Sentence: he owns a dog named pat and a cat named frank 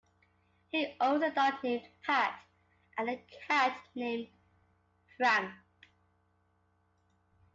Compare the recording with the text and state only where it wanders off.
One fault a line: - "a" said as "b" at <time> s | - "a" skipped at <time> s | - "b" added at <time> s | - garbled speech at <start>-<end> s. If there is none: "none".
none